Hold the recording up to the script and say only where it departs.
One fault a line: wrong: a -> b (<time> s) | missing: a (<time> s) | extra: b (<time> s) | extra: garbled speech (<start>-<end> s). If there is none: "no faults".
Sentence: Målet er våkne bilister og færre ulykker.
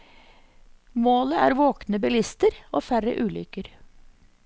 no faults